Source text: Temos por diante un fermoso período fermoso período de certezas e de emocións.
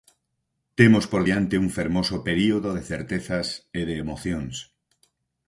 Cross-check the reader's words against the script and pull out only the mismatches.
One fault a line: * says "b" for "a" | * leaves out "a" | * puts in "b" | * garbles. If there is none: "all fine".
* leaves out "fermoso período"